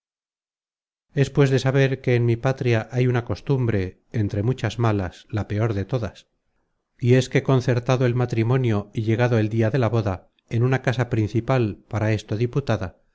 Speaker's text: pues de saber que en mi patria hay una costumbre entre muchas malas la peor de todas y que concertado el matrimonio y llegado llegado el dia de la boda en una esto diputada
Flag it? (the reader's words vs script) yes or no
yes